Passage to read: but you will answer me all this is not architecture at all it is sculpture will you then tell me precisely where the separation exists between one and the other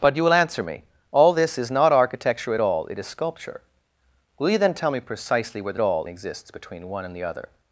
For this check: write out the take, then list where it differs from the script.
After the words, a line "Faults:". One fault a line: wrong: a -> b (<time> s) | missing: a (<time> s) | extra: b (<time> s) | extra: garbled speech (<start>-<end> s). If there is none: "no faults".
but you will answer me all this is not architecture at all it is sculpture will you then tell me precisely where the all exists between one and the other
Faults:
wrong: separation -> all (5.8 s)